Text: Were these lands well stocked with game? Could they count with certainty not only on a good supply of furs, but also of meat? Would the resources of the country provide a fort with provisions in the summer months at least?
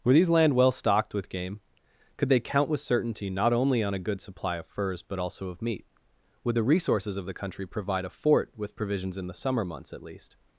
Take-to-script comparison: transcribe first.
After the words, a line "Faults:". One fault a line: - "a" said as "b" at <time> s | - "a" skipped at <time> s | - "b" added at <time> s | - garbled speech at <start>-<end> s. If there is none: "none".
Were these land well stocked with game? Could they count with certainty not only on a good supply of furs, but also of meat? Would the resources of the country provide a fort with provisions in the summer months at least?
Faults:
- "lands" said as "land" at 0.3 s